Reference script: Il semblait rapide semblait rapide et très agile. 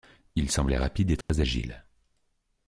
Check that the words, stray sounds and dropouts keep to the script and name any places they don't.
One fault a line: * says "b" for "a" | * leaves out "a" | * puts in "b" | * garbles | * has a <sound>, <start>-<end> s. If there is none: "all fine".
* leaves out "semblait rapide"
* has a dropout, 1.2-1.3 s